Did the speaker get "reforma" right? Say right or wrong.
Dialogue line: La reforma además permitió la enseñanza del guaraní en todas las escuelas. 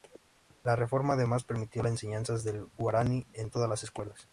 right